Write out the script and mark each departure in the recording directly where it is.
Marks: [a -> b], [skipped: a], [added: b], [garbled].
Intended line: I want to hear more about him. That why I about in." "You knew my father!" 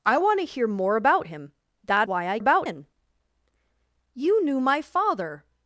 I want to hear more about him. That why I about in." "You knew my father!"